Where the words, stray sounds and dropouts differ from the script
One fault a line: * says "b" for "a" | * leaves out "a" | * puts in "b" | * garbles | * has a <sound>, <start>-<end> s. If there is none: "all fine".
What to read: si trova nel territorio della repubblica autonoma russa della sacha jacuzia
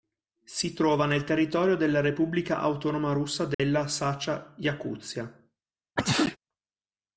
* has a dropout, 3.5-3.6 s
* has a sneeze, 6.0-6.4 s